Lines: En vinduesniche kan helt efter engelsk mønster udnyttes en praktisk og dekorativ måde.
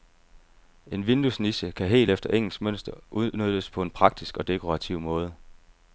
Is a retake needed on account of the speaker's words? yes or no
yes